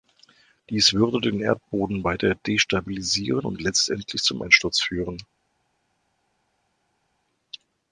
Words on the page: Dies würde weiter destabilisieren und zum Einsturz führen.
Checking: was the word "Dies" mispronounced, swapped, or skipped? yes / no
no